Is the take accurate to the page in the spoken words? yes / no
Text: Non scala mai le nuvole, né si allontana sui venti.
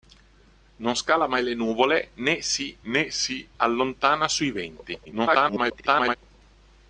no